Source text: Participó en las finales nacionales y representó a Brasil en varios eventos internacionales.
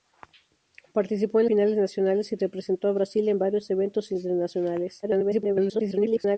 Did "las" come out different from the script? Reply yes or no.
yes